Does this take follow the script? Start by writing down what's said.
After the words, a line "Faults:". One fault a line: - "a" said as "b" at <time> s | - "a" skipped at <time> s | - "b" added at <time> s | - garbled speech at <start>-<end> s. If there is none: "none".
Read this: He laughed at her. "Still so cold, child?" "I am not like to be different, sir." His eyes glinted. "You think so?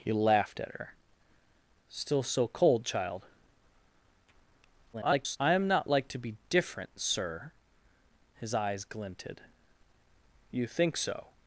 He laughed at her. "Still so cold, child?" [garbled] "I am not like to be different, sir." His eyes glinted. "You think so?
Faults:
- garbled speech at 4.9-5.4 s